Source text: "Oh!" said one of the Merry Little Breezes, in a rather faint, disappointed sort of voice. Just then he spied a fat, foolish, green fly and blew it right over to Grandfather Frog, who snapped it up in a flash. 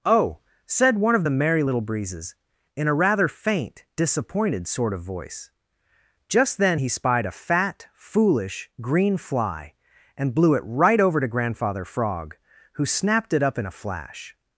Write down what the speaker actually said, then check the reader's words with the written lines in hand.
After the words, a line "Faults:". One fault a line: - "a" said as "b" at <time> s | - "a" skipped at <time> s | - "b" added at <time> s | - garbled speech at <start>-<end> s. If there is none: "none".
"Oh!" said one of the Merry Little Breezes, in a rather faint, disappointed sort of voice. Just then he spied a fat, foolish, green fly and blew it right over to Grandfather Frog, who snapped it up in a flash.
Faults:
none